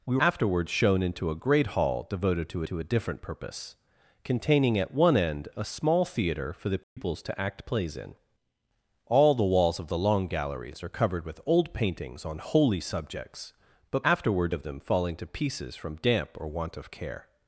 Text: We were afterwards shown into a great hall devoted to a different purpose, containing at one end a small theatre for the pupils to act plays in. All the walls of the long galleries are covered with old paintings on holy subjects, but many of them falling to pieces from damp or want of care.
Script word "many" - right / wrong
wrong